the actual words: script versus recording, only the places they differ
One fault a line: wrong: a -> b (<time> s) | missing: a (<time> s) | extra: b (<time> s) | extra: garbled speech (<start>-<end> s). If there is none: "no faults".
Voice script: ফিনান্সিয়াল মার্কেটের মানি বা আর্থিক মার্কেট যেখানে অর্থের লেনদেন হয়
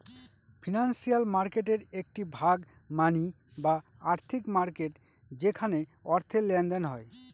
extra: একটি ভাগ (1.9 s)